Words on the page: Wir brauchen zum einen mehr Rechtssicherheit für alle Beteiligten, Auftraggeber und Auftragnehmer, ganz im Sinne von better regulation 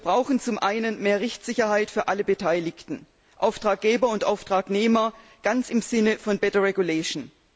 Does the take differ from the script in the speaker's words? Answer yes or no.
no